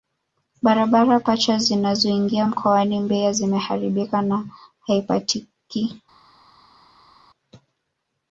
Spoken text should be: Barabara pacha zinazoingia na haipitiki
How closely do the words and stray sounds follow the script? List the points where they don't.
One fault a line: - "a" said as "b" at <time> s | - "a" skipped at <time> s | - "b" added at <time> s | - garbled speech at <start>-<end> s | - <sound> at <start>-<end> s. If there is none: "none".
- "mkoani Mbeya zimeharibika" added at 2.4 s